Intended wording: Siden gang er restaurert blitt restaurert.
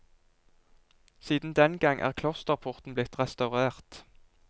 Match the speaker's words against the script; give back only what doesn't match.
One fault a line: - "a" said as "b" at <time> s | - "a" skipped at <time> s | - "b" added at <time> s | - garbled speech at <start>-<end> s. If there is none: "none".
- "den" added at 1.5 s
- "restaurert" said as "klosterporten" at 2.1 s